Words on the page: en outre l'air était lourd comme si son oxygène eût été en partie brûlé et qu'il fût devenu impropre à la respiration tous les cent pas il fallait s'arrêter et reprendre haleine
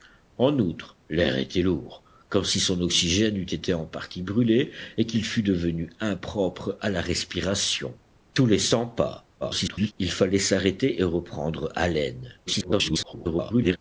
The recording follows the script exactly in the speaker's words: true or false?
false